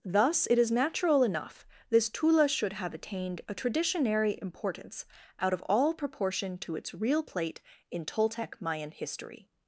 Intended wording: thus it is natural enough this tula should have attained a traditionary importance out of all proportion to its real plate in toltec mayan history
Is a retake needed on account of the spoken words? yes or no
no